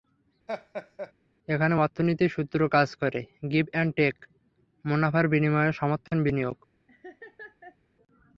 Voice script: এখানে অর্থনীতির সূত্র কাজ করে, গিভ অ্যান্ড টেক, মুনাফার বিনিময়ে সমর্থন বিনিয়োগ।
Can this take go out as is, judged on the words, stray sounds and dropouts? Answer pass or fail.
fail